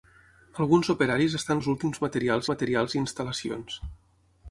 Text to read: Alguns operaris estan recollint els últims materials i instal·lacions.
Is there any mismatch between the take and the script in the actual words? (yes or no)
yes